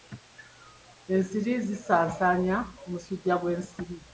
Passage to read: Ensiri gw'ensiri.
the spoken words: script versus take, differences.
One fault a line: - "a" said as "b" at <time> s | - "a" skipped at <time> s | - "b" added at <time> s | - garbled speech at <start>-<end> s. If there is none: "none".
- "zisaasaanya omusujja" added at 1.7 s